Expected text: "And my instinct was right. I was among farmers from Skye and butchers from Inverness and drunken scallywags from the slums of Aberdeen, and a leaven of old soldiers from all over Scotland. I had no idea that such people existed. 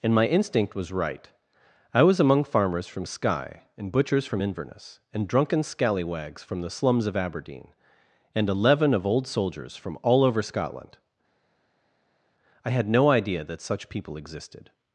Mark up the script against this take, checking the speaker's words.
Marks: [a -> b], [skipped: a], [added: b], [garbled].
"And my instinct was right. I was among farmers from Skye and butchers from Inverness and drunken scallywags from the slums of Aberdeen, and a leaven of old soldiers from all over Scotland. I had no idea that such people existed.